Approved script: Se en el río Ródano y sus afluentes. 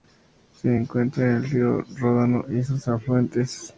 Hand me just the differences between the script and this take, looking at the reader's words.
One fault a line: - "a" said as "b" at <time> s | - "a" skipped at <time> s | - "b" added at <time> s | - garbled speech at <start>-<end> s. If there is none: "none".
- "encuentra" added at 0.7 s